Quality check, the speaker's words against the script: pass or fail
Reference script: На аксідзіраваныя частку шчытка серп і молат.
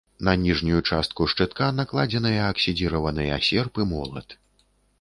fail